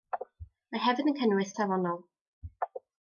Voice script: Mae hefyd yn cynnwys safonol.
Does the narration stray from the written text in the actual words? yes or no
no